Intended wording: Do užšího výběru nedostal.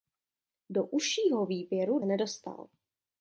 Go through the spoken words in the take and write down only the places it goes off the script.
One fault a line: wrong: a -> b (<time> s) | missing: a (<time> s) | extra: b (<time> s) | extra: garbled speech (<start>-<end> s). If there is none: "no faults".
no faults